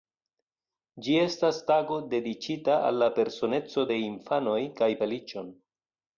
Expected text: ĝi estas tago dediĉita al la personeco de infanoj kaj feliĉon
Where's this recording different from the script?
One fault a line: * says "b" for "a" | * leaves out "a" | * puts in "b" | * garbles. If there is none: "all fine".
all fine